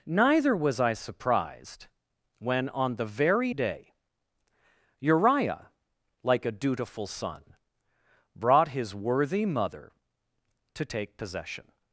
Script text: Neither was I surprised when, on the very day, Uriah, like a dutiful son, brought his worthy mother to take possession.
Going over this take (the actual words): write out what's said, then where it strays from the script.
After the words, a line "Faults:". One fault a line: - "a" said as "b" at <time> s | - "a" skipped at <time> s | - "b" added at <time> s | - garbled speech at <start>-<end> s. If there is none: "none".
Neither was I surprised when, on the very day, Uriah, like a dutiful son, brought his worthy mother to take possession.
Faults:
none